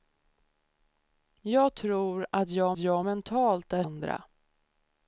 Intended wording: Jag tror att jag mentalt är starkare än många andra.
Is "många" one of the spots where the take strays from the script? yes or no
yes